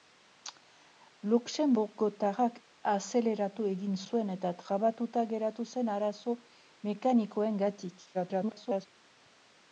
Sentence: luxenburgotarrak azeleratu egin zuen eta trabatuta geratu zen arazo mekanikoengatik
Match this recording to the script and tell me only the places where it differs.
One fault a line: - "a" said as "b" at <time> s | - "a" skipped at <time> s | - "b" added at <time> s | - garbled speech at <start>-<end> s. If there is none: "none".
- garbled speech at 8.1-8.9 s